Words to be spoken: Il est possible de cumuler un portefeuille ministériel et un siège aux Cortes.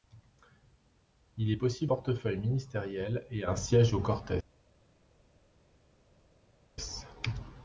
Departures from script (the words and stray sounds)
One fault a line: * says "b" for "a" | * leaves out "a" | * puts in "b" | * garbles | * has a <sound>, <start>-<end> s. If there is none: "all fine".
* leaves out "de cumuler un"